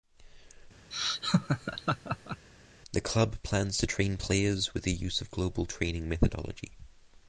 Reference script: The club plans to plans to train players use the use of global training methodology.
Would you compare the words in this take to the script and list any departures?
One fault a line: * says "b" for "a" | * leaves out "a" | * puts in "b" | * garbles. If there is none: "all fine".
* leaves out "plans to"
* says "with" for "use"